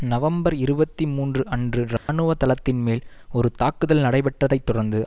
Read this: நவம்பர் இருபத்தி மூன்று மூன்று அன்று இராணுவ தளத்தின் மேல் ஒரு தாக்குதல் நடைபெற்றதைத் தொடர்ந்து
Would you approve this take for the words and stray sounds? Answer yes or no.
no